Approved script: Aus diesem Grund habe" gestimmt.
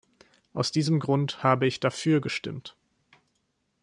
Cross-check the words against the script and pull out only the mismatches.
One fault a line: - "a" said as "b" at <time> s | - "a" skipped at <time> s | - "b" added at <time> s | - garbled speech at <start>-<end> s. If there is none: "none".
- "ich dafür" added at 1.7 s